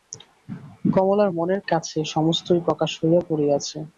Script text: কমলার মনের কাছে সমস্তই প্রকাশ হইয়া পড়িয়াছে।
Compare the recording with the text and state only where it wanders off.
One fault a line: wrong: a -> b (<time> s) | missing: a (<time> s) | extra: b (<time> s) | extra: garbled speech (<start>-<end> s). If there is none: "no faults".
no faults